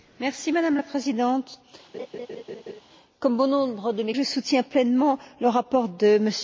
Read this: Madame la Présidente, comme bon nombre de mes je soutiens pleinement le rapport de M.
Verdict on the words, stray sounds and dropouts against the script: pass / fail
fail